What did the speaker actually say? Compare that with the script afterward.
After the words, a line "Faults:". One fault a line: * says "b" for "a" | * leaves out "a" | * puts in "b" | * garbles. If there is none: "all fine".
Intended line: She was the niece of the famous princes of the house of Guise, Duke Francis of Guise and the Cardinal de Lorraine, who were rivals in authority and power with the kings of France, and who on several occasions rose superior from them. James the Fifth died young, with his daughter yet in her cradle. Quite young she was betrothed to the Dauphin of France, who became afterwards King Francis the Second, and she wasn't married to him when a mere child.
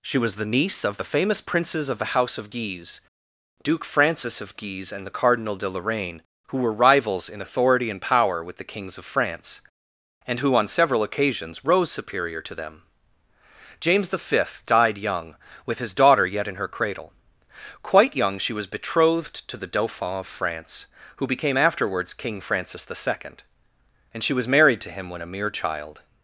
She was the niece of the famous princes of the house of Guise, Duke Francis of Guise and the Cardinal de Lorraine, who were rivals in authority and power with the kings of France, and who on several occasions rose superior to them. James the Fifth died young, with his daughter yet in her cradle. Quite young she was betrothed to the Dauphin of France, who became afterwards King Francis the Second, and she was married to him when a mere child.
Faults:
* says "to" for "from"
* says "was" for "wasn't"